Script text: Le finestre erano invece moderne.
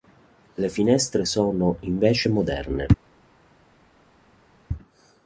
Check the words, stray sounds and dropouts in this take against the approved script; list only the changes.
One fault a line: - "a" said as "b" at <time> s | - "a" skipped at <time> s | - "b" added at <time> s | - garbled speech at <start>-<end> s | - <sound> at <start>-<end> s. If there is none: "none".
- "erano" said as "sono" at 1.2 s